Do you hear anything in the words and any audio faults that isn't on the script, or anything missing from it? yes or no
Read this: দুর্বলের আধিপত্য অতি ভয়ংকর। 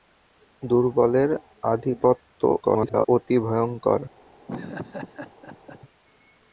yes